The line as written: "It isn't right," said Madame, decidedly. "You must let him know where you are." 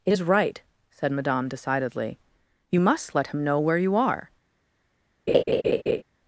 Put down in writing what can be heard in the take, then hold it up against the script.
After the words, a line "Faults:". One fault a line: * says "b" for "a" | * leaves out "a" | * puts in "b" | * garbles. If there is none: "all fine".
"It is right," said Madame, decidedly. "You must let him know where you are."
Faults:
* says "is" for "isn't"